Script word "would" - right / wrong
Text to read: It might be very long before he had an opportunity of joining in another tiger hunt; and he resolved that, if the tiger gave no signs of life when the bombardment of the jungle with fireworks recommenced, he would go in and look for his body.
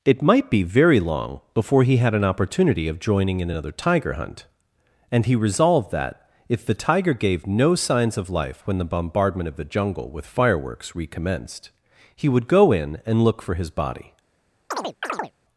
right